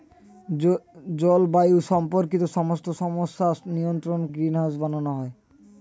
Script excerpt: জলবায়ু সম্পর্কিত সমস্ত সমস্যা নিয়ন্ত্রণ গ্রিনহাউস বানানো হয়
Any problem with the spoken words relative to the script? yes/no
no